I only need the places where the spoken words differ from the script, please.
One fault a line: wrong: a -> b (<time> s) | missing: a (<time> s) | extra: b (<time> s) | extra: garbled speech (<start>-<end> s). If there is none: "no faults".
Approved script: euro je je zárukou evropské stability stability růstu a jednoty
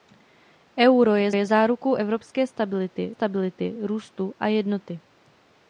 no faults